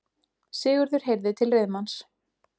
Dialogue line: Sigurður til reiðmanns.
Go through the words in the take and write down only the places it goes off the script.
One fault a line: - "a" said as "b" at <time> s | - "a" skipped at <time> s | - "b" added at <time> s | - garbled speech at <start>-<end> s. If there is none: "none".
- "heyrði" added at 1.1 s